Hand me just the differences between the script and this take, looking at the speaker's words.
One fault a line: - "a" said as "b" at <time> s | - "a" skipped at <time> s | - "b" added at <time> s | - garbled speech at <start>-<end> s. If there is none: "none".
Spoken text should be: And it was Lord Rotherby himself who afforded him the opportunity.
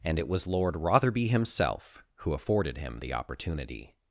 none